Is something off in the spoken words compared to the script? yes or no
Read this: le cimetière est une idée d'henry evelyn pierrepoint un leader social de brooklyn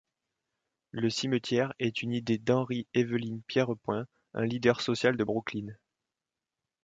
no